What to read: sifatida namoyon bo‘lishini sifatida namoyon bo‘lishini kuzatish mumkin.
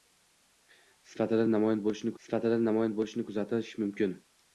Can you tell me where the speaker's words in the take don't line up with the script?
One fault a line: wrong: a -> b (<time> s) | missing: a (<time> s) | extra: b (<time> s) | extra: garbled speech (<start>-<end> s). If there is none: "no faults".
no faults